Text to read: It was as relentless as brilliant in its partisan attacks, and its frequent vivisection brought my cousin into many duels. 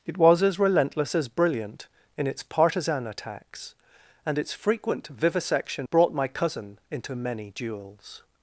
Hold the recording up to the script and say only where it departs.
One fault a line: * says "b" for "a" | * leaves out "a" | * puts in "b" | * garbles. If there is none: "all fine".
all fine